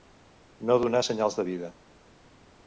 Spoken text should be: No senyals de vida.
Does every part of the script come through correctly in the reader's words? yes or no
no